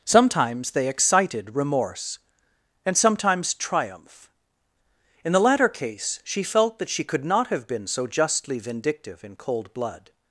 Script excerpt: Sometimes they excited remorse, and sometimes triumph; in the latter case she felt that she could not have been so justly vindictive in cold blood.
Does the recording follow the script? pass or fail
pass